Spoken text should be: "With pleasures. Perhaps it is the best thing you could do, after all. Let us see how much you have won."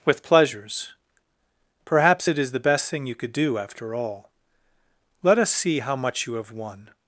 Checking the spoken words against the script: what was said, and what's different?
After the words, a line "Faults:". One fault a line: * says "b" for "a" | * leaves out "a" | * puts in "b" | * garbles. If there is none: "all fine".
"With pleasures. Perhaps it is the best thing you could do, after all. Let us see how much you have won."
Faults:
all fine